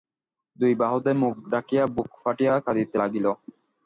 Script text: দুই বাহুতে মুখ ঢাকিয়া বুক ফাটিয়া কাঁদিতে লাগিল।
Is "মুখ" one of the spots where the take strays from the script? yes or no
no